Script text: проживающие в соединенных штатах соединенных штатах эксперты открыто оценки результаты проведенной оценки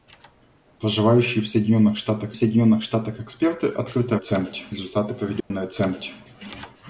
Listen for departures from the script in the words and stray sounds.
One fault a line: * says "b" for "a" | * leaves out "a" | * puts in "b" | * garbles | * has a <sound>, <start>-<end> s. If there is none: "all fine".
* has a dropout, 5.4-5.5 s